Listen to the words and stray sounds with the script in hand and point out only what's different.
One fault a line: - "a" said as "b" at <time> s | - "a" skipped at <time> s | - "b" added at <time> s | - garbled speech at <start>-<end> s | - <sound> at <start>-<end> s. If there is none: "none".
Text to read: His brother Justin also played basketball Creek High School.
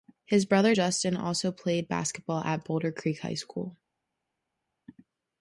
- "at Boulder" added at 2.4 s